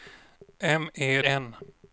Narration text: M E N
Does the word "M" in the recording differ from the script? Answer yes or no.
no